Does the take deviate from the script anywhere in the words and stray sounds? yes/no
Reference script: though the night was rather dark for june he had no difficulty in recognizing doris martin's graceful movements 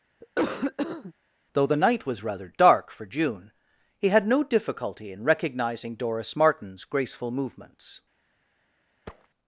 yes